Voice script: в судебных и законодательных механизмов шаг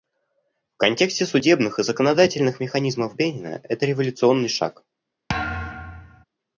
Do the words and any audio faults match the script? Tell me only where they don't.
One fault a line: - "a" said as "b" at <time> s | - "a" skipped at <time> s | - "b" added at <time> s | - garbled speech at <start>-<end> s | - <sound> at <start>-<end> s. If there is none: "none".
- "контексте" added at 0.8 s
- "бенина это революционный" added at 3.1 s
- thud at 5.3-6.2 s